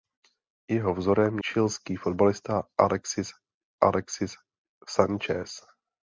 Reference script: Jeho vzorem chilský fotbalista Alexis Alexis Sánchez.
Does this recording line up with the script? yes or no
yes